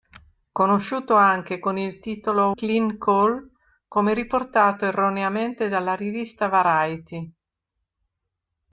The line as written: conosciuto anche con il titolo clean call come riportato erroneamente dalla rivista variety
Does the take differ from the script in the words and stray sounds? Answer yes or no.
no